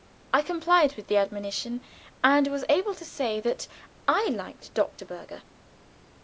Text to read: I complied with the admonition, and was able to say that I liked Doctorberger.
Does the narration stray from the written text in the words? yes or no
no